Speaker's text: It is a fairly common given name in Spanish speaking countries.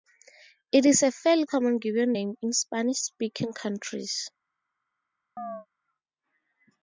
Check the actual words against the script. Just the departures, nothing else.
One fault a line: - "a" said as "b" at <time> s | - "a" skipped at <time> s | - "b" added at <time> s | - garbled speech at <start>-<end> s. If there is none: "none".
none